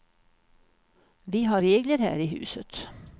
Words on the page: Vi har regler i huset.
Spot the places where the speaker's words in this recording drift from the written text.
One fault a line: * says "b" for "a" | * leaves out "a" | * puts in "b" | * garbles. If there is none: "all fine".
* puts in "här"